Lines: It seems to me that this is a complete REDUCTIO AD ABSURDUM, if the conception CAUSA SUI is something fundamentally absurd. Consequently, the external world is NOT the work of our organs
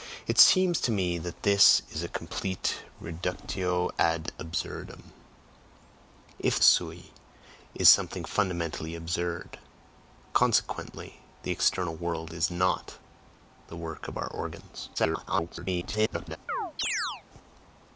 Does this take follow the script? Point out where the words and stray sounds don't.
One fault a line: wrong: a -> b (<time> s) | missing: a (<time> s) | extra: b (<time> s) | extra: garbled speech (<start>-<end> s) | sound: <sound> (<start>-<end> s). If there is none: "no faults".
missing: the conception CAUSA (6.6 s)
extra: garbled speech (15.0-16.4 s)
sound: chirp (16.5-17.2 s)